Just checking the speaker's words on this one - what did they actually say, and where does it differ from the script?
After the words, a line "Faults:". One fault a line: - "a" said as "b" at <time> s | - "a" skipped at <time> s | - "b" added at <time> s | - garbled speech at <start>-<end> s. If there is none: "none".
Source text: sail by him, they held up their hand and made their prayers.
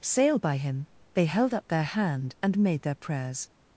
sail by him, they held up their hand and made their prayers.
Faults:
none